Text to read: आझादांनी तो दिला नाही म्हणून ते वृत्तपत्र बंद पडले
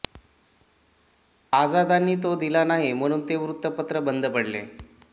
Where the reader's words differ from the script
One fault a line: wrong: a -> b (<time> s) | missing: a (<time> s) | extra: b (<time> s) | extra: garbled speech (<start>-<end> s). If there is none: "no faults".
no faults